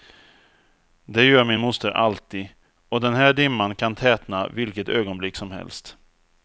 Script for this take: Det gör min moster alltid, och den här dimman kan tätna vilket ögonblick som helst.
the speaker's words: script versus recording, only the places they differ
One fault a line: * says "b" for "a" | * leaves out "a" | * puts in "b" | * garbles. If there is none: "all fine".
all fine